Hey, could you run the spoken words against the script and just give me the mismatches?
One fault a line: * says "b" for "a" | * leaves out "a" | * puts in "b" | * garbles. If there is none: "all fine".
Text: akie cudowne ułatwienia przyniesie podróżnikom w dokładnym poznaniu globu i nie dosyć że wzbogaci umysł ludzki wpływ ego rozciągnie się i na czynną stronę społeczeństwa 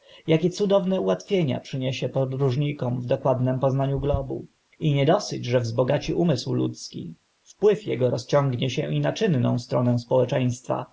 all fine